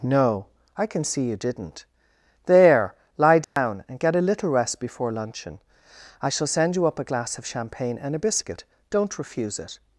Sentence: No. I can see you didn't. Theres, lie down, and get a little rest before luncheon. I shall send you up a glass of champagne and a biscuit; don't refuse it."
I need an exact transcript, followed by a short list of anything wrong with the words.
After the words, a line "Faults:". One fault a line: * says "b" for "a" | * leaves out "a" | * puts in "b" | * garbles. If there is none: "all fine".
No. I can see you didn't. There, lie down, and get a little rest before luncheon. I shall send you up a glass of champagne and a biscuit; don't refuse it."
Faults:
* says "There" for "Theres"